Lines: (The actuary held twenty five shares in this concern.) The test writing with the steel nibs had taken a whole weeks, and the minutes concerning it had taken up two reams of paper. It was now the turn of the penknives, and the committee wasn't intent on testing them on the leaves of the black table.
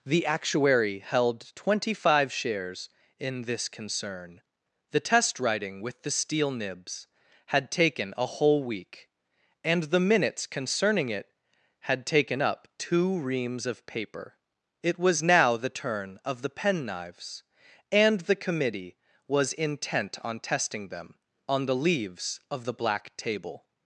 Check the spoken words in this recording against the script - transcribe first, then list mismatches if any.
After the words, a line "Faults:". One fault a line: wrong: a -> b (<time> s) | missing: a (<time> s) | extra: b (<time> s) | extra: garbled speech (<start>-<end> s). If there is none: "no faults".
(The actuary held twenty five shares in this concern.) The test writing with the steel nibs had taken a whole week, and the minutes concerning it had taken up two reams of paper. It was now the turn of the penknives, and the committee was intent on testing them on the leaves of the black table.
Faults:
wrong: weeks -> week (8.6 s)
wrong: wasn't -> was (19.3 s)